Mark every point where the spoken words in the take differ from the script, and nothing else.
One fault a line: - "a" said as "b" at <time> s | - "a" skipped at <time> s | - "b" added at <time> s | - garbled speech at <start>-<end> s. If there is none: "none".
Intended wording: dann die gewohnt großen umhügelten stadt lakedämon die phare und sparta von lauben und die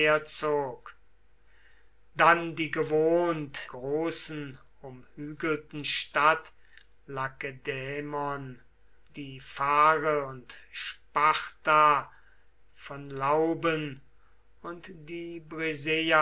none